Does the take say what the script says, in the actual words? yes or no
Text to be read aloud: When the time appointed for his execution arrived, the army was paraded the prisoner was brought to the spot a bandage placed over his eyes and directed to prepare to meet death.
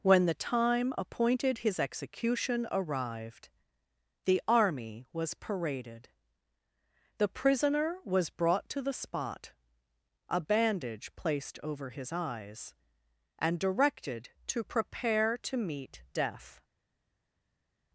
no